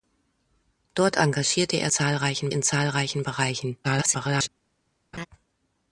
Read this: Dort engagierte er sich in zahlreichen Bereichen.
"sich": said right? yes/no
no